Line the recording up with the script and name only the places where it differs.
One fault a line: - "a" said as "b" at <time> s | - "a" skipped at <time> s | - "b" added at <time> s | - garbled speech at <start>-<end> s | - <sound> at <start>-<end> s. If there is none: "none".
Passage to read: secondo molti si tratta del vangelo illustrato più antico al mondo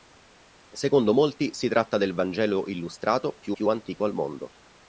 - "più" added at 3.5 s